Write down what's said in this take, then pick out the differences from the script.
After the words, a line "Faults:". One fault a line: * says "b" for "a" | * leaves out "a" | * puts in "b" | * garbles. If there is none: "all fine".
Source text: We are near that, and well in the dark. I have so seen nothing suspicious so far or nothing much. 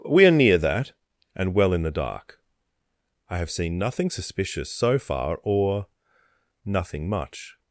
We are near that, and well in the dark. I have seen nothing suspicious so far or nothing much.
Faults:
* leaves out "so"